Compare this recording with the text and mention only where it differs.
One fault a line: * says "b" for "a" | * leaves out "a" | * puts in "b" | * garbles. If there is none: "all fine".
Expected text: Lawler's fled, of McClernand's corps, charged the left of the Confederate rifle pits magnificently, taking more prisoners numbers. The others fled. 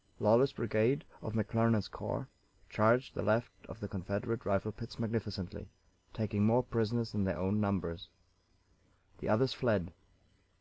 * says "brigade" for "fled"
* puts in "than their own"